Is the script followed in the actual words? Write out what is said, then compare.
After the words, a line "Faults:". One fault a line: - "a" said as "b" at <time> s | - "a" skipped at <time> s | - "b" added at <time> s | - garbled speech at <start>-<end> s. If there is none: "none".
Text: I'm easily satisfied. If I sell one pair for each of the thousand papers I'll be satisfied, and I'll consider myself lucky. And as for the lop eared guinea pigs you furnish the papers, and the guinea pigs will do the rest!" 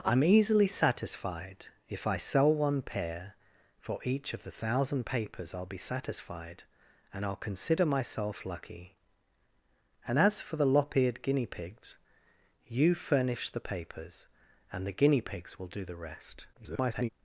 I'm easily satisfied. If I sell one pair for each of the thousand papers I'll be satisfied, and I'll consider myself lucky. And as for the lop eared guinea pigs you furnish the papers, and the guinea pigs will do the rest!" [garbled]
Faults:
- garbled speech at 16.5-17.1 s